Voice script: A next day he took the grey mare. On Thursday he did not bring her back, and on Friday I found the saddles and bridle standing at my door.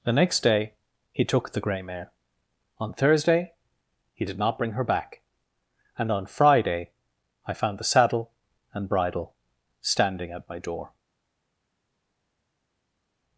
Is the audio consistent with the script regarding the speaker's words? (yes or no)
no